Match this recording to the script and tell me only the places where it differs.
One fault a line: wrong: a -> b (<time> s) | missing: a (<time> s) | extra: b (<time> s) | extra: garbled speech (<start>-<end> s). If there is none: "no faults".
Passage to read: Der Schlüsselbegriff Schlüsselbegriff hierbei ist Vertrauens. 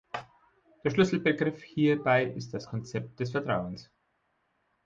missing: Schlüsselbegriff (1.6 s)
extra: das Konzept des (2.5 s)